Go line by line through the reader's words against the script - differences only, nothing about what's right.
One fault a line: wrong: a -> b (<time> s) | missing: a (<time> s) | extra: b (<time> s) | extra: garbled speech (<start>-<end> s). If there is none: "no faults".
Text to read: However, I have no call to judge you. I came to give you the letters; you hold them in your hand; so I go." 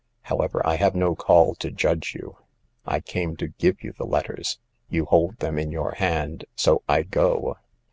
no faults